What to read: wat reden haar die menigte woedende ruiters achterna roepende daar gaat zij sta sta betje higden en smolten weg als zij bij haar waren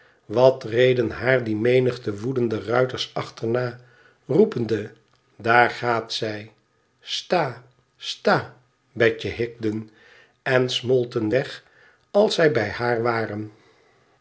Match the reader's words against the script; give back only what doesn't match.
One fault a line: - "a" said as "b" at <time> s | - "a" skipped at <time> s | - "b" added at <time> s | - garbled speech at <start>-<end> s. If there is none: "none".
none